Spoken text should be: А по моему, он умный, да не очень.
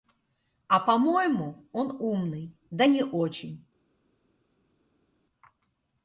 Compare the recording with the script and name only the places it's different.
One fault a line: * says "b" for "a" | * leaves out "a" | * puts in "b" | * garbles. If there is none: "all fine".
all fine